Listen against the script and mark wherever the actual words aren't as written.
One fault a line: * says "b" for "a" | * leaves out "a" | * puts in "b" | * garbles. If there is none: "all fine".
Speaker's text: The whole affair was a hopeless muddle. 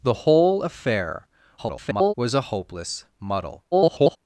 * garbles
* garbles